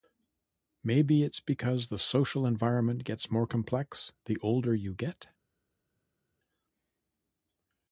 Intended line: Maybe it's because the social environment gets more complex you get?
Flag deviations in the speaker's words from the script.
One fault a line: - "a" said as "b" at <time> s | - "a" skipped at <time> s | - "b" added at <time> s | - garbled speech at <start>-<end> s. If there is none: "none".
- "the older" added at 4.2 s